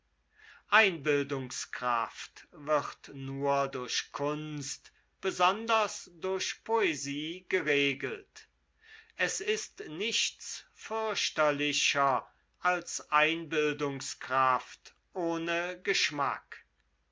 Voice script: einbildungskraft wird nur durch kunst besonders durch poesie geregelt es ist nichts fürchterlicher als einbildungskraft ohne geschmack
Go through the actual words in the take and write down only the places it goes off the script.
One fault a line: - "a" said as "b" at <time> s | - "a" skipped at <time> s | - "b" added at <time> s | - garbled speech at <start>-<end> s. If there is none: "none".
none